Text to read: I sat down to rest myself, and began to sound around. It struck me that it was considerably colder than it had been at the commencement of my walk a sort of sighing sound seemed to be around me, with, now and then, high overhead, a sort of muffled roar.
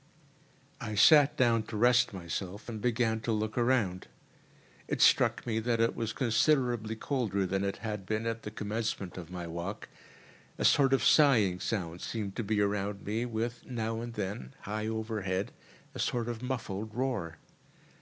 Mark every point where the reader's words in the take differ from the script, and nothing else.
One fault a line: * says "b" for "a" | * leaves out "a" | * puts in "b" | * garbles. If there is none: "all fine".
* says "look" for "sound"